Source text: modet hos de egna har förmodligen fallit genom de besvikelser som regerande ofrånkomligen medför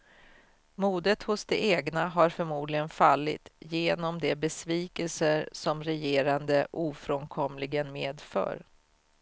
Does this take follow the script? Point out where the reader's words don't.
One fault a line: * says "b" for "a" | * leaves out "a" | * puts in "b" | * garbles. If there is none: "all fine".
all fine